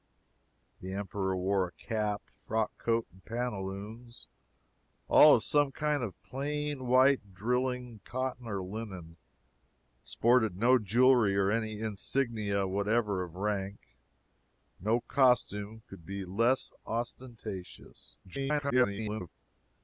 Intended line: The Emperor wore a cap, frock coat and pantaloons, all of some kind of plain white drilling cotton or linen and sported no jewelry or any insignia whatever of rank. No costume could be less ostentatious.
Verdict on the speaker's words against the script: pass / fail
fail